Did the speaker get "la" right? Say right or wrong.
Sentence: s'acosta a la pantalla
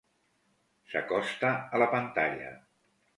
right